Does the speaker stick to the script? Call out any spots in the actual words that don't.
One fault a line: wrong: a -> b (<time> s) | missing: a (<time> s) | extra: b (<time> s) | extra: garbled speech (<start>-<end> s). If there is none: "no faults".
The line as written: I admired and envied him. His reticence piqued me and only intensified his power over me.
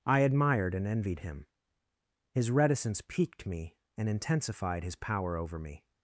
missing: only (4.1 s)